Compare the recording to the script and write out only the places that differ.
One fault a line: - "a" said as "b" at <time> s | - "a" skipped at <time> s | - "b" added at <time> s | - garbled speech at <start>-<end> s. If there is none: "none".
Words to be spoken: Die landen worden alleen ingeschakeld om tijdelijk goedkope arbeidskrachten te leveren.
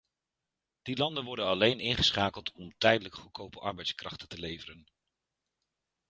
none